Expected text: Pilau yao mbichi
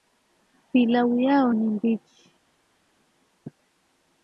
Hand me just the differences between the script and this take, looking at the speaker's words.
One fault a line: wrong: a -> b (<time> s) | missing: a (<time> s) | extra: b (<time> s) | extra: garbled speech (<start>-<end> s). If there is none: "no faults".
extra: ni (1.5 s)